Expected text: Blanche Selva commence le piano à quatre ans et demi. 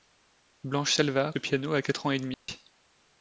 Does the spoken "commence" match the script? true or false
false